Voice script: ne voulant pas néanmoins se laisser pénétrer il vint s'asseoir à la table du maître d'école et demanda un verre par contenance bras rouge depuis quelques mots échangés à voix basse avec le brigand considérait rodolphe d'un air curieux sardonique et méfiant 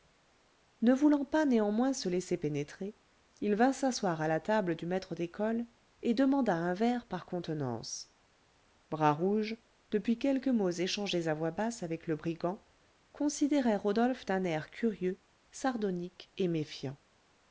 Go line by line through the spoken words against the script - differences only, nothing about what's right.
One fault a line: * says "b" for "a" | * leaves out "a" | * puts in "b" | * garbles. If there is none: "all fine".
all fine